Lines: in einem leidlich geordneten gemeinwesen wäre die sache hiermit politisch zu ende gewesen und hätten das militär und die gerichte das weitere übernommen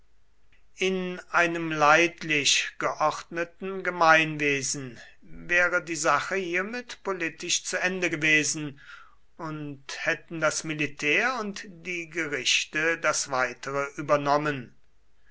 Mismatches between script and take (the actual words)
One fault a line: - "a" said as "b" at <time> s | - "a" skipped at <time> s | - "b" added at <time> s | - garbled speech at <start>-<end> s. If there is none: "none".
none